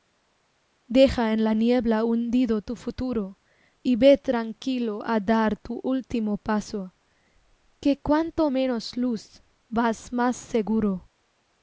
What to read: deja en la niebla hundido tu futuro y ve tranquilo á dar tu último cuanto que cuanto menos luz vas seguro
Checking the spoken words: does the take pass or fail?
fail